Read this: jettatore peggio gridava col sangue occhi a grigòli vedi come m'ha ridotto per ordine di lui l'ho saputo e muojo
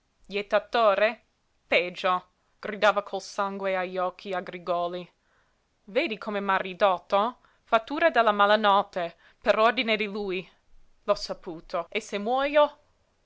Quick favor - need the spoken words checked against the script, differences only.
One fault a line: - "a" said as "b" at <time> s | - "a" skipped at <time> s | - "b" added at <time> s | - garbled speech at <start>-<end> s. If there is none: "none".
- "agli" added at 3.8 s
- "fattura della malanotte" added at 7.7 s
- "se" added at 12.0 s